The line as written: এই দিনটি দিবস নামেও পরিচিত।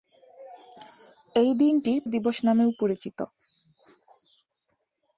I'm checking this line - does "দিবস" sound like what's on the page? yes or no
yes